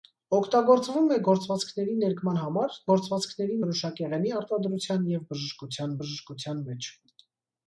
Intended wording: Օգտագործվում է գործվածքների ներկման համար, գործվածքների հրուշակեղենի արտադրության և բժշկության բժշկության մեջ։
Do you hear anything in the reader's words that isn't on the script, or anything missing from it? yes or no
no